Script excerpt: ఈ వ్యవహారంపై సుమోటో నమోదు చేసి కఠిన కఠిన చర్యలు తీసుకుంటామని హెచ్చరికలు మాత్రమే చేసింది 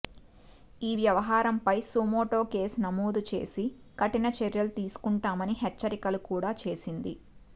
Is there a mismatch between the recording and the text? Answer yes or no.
yes